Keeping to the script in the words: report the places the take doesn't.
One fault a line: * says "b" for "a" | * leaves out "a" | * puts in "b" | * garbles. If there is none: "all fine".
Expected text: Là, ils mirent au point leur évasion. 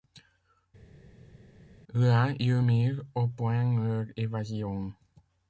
all fine